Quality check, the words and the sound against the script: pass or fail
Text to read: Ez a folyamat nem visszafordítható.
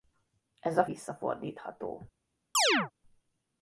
fail